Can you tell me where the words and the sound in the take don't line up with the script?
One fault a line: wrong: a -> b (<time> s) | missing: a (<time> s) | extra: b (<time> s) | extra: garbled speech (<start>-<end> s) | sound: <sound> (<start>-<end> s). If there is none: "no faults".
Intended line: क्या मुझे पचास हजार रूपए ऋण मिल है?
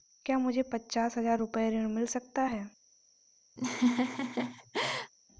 extra: सकता (2.1 s)
sound: laugh (3.6-5.1 s)